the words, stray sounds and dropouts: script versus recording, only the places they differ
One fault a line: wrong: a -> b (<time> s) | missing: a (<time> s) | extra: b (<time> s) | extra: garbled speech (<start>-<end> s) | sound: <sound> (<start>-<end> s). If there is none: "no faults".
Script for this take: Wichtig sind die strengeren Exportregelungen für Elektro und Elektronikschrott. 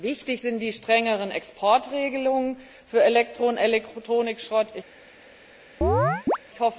sound: chirp (5.8-6.4 s)